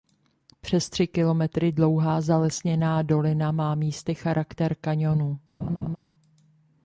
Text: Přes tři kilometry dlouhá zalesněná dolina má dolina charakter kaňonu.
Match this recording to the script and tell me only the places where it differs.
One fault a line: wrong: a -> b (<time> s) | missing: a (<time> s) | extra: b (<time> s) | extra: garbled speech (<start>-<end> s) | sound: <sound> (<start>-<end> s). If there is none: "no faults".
wrong: dolina -> místy (3.8 s)
sound: laugh (5.6-6.0 s)